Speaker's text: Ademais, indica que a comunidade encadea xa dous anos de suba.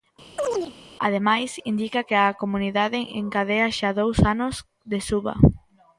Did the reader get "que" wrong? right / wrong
right